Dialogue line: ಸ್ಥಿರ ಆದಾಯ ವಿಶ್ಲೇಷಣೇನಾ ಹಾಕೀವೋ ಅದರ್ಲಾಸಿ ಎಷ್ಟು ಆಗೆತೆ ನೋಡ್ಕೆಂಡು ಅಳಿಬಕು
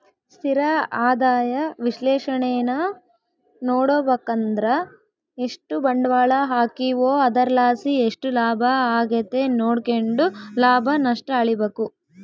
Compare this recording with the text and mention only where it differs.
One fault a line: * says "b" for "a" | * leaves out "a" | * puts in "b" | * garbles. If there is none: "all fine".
* puts in "ನೋಡುಬಕಂದ್ರ ಎಷ್ಟು ಬಂಡ್ವಾಳ"
* puts in "ಲಾಭ"
* puts in "ಲಾಭ ನಷ್ಟ"